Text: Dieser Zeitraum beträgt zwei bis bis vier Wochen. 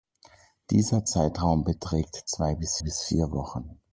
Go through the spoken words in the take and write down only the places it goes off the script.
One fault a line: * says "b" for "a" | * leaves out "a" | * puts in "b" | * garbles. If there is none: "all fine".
all fine